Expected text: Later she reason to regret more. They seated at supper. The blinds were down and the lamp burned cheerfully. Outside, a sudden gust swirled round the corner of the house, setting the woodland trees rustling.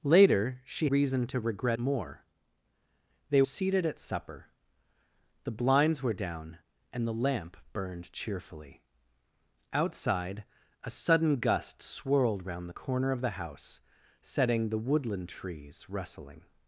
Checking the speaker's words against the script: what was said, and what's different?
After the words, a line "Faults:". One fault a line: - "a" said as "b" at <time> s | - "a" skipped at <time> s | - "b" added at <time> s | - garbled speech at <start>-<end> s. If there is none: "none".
Later she reason to regret more. They seated at supper. The blinds were down and the lamp burned cheerfully. Outside, a sudden gust swirled round the corner of the house, setting the woodland trees rustling.
Faults:
none